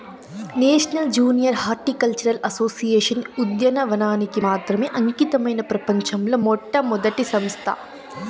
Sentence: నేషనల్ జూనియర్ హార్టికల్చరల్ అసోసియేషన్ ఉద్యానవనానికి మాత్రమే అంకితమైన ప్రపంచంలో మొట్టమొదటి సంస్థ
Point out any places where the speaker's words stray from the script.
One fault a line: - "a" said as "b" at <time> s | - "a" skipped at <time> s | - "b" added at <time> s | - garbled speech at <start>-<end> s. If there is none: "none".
none